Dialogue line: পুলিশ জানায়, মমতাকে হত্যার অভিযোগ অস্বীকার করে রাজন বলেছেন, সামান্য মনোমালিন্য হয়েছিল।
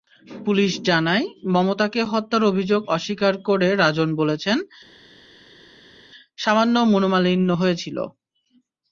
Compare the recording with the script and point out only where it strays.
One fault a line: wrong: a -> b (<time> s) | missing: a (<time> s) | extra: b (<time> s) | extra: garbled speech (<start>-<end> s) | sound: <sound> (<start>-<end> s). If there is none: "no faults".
no faults